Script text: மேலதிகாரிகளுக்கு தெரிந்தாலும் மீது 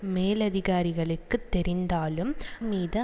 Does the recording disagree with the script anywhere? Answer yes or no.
no